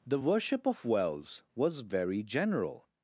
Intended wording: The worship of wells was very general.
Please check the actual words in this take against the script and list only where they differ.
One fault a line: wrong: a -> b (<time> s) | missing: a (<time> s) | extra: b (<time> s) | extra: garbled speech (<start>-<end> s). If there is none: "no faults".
no faults